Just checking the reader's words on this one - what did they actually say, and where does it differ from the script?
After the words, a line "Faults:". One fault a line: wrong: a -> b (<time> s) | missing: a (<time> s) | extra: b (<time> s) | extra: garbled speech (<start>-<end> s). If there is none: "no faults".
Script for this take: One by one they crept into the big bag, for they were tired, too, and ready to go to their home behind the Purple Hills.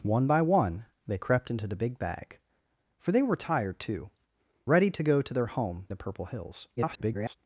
One by one they crept into the big bag, for they were tired, too, ready to go to their home the Purple Hills. [garbled]
Faults:
missing: and (4.1 s)
missing: behind (5.9 s)
extra: garbled speech (6.8-7.4 s)